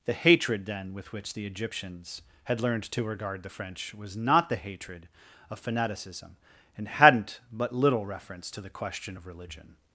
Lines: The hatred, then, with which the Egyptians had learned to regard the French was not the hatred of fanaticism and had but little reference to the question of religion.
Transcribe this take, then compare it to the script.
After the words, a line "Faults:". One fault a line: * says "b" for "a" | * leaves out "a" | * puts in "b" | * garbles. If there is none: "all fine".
The hatred, then, with which the Egyptians had learned to regard the French was not the hatred of fanaticism and hadn't but little reference to the question of religion.
Faults:
* says "hadn't" for "had"